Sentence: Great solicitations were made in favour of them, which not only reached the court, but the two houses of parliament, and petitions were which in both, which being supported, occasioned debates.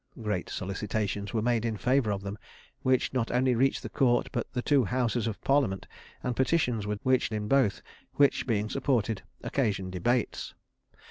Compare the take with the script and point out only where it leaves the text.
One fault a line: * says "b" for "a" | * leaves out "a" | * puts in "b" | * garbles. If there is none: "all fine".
all fine